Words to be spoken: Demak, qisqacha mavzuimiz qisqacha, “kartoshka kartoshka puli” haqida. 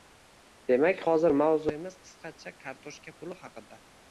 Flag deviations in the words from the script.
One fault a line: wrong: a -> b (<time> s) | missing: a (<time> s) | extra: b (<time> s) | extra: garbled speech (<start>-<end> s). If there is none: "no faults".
wrong: qisqacha -> hozir (1.0 s)
missing: kartoshka (3.2 s)